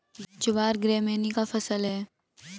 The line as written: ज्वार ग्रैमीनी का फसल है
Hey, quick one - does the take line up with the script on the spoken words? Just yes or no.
yes